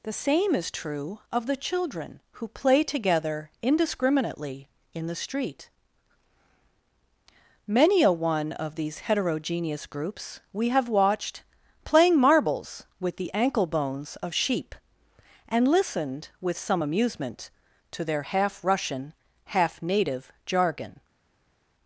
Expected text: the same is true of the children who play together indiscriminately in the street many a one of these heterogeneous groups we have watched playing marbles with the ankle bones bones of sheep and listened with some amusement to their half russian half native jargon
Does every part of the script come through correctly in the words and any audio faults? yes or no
no